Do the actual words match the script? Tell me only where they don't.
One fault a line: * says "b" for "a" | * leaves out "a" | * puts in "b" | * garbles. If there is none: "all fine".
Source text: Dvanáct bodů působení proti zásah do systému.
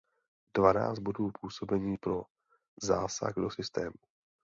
* says "pro" for "proti"